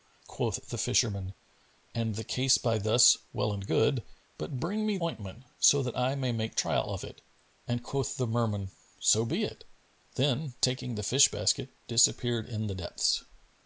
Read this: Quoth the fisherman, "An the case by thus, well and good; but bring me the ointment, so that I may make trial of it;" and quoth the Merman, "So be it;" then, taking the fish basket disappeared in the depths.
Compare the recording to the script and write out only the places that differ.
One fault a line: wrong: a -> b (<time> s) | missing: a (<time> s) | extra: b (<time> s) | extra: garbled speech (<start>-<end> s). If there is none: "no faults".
missing: the (5.0 s)